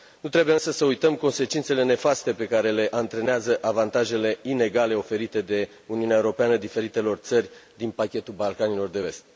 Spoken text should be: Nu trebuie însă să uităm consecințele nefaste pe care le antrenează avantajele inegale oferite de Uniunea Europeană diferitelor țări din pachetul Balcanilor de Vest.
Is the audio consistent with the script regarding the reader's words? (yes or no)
yes